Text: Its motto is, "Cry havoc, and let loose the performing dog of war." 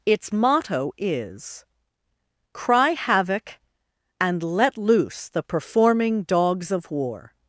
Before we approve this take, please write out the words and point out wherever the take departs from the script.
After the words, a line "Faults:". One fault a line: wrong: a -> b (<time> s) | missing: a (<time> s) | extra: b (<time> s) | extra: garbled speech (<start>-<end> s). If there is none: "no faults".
Its motto is, "Cry havoc, and let loose the performing dogs of war."
Faults:
wrong: dog -> dogs (6.2 s)